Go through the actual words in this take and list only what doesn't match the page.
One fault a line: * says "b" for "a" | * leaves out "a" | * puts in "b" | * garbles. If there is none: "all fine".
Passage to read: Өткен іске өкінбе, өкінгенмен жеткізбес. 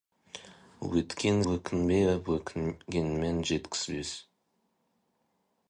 * leaves out "іске"